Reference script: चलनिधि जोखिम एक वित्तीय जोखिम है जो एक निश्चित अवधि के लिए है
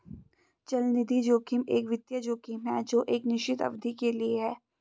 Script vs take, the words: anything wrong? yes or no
no